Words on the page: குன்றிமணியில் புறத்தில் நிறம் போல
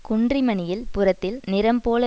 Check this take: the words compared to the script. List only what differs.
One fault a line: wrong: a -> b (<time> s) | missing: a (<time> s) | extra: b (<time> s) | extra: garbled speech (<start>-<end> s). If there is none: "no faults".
no faults